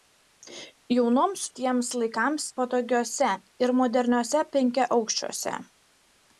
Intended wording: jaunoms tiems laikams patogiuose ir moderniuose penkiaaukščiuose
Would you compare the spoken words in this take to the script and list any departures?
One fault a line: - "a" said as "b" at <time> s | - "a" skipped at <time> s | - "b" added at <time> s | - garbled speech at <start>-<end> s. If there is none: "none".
none